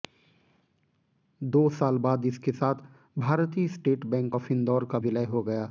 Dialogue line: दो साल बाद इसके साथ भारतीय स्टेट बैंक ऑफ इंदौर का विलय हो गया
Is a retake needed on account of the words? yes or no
no